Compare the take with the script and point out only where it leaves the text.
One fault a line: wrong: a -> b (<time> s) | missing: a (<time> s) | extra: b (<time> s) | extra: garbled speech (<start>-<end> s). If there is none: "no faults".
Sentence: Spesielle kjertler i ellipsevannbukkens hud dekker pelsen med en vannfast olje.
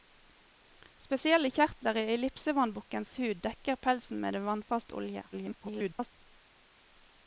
extra: garbled speech (5.3-6.1 s)